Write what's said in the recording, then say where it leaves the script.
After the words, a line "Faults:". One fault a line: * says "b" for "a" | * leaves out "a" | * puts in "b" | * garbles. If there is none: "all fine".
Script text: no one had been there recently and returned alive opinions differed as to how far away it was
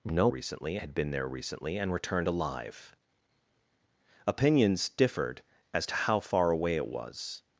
no recently had been there recently and returned alive opinions differed as to how far away it was
Faults:
* says "recently" for "one"